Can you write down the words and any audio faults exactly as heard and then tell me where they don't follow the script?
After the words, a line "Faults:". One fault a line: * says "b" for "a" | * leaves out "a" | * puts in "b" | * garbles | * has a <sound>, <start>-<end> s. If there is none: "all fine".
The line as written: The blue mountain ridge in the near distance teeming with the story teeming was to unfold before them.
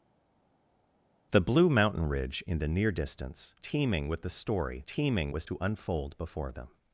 The blue mountain ridge in the near distance teeming with the story teeming was to unfold before them.
Faults:
all fine